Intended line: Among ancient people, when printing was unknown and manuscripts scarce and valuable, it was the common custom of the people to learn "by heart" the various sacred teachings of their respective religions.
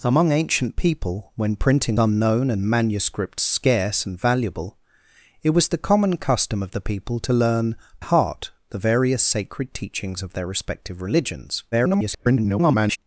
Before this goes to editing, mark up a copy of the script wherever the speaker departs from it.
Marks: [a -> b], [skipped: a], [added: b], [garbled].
Among ancient people, when printing [skipped: was] unknown and manuscripts scarce and valuable, it was the common custom of the people to learn [skipped: "by] heart" the various sacred teachings of their respective religions. [garbled]